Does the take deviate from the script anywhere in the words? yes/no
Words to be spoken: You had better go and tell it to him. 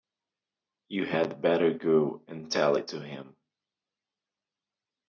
no